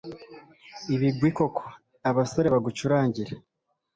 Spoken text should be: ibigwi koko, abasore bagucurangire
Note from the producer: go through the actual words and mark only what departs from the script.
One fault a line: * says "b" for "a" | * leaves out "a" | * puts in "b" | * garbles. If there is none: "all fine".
all fine